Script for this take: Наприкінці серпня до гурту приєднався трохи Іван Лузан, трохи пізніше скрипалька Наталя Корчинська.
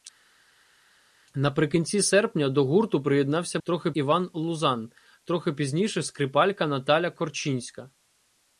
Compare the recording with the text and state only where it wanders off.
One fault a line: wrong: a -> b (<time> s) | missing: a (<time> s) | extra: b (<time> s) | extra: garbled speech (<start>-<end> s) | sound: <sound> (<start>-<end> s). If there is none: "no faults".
no faults